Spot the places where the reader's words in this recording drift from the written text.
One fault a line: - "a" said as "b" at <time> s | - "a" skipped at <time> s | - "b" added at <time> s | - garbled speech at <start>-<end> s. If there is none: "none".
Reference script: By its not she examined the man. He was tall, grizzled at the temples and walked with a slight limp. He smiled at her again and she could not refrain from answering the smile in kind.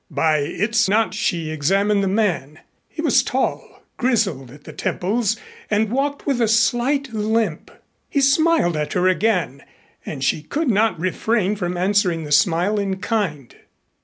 none